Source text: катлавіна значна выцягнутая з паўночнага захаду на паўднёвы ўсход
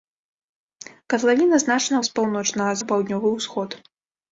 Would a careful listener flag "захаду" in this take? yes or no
yes